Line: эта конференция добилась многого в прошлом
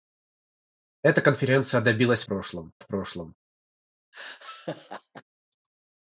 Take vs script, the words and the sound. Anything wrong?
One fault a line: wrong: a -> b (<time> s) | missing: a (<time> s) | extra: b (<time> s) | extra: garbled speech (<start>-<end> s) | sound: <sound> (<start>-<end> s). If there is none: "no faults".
wrong: многого -> прошлом (2.2 s)
sound: laugh (4.1-5.2 s)